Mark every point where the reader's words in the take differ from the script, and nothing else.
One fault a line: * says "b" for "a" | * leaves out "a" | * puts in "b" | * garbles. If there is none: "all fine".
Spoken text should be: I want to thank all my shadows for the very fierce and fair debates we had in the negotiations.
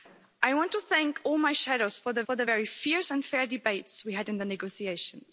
* puts in "for the"